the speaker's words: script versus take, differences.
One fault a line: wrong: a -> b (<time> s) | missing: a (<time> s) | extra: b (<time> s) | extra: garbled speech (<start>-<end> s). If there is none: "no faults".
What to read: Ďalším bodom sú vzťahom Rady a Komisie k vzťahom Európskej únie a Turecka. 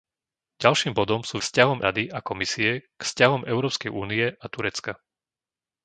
no faults